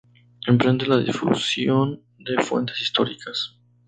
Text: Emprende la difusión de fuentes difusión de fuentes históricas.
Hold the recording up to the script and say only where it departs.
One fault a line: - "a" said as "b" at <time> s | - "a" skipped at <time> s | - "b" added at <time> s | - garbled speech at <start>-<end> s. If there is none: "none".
- "difusión de fuentes" skipped at 2.8 s